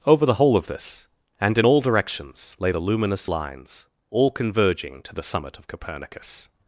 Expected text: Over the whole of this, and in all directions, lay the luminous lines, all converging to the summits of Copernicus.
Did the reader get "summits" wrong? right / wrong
wrong